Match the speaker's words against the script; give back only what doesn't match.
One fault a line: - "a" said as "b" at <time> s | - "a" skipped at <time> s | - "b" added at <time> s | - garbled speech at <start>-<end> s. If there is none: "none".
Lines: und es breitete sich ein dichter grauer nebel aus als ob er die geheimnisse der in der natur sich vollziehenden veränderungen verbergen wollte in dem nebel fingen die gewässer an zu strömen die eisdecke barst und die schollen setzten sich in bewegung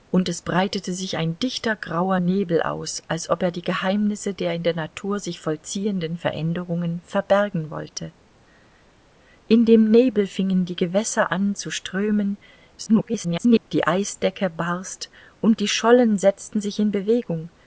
- garbled speech at 12.8-13.7 s